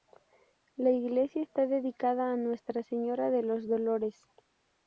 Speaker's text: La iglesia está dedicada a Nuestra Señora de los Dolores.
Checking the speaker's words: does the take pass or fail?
pass